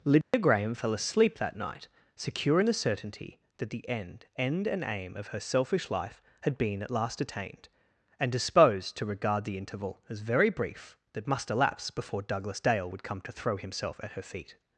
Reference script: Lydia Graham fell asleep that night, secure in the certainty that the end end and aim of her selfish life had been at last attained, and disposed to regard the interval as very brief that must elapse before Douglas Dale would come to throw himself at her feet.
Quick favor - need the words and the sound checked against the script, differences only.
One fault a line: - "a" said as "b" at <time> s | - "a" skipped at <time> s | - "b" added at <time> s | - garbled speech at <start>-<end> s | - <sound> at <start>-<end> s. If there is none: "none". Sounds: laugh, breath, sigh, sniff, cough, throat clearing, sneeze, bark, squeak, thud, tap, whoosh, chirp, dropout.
- dropout at 0.2-0.3 s